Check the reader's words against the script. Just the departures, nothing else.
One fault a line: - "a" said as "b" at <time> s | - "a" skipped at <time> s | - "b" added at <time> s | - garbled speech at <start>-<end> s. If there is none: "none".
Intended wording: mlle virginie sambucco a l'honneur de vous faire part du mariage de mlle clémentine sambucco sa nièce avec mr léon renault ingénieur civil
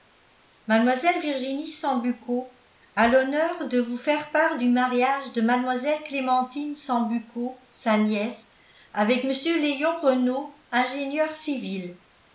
none